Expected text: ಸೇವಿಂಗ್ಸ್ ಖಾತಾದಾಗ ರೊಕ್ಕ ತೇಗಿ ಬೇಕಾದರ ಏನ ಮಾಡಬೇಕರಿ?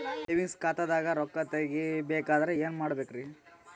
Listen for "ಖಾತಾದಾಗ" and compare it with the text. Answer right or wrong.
right